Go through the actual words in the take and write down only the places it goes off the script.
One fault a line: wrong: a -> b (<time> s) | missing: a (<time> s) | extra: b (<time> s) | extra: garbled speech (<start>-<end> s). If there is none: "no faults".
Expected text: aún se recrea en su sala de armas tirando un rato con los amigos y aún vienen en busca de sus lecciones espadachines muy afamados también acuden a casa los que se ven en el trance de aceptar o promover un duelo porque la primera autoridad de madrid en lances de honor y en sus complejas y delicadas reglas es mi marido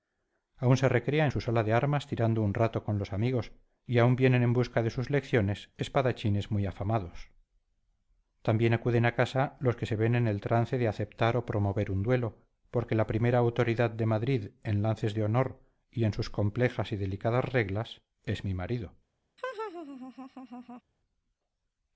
no faults